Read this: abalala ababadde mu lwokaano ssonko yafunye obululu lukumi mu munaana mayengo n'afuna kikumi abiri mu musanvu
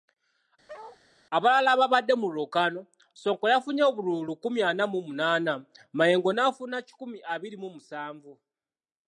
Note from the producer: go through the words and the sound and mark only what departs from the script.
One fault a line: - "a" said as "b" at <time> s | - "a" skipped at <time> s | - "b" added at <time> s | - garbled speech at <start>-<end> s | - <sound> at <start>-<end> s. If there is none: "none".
- bark at 0.7-1.0 s
- "ana" added at 4.7 s